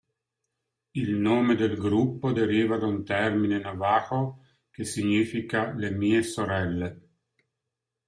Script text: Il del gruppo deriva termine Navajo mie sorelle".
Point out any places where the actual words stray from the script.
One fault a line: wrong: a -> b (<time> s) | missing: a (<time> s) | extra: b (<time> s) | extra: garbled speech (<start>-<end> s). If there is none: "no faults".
extra: nome (1.1 s)
extra: da un (2.8 s)
extra: che significa le (4.7 s)